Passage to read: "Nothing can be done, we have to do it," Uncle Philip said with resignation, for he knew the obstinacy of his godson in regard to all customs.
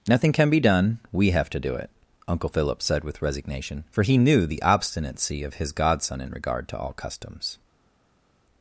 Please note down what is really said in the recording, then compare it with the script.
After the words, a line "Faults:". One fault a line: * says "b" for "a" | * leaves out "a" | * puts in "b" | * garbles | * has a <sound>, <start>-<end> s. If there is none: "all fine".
"Nothing can be done, we have to do it," Uncle Philip said with resignation, for he knew the obstinacy of his godson in regard to all customs.
Faults:
all fine